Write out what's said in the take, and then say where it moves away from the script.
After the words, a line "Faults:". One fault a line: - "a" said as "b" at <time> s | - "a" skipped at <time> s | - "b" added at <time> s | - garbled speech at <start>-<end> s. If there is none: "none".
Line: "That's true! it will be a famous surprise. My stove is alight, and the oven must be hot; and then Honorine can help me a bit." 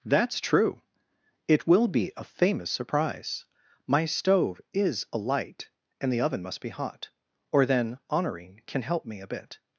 "That's true! it will be a famous surprise. My stove is alight, and the oven must be hot; or then Honorine can help me a bit."
Faults:
- "and" said as "or" at 7.5 s